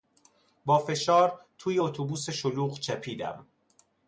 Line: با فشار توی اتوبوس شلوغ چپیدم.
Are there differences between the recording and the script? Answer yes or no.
no